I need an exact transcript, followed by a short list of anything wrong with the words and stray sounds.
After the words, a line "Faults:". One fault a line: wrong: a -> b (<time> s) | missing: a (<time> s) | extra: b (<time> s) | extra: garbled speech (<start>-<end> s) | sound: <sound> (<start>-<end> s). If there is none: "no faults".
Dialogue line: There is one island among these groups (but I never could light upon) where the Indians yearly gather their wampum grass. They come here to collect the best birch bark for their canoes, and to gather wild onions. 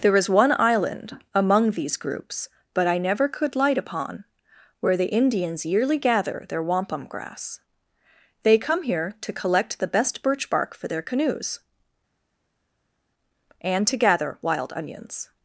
There is one island among these groups (but I never could light upon) where the Indians yearly gather their wampum grass. They come here to collect the best birch bark for their canoes, and to gather wild onions.
Faults:
no faults